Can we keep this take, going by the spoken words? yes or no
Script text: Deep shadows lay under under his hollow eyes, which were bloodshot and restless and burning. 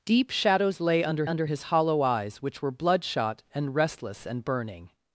yes